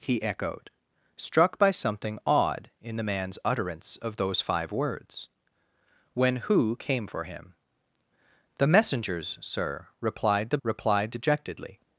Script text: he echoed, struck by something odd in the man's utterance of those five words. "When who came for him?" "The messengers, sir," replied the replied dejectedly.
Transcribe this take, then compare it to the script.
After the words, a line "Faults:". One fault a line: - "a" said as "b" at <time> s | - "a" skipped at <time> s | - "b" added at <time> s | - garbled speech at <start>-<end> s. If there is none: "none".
he echoed, struck by something odd in the man's utterance of those five words. "When who came for him?" "The messengers, sir," replied the replied dejectedly.
Faults:
none